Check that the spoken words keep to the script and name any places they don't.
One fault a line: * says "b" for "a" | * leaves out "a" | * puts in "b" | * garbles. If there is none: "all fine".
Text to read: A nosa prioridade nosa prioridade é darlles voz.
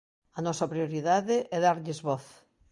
* leaves out "nosa prioridade"